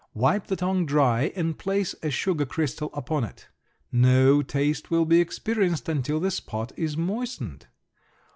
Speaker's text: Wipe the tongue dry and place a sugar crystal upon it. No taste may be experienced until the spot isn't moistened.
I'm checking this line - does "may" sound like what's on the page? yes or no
no